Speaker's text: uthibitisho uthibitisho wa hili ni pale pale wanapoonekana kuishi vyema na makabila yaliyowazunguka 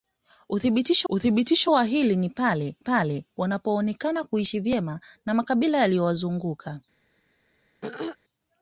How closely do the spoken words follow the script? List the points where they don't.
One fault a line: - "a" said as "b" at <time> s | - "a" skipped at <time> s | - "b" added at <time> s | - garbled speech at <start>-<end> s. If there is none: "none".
none